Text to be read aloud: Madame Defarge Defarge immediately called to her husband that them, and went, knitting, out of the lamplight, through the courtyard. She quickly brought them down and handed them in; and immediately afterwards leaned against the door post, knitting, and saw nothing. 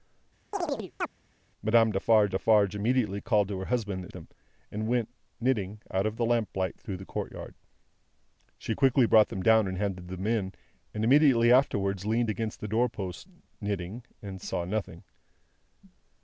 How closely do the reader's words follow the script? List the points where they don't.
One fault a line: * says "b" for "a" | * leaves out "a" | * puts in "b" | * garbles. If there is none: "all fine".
all fine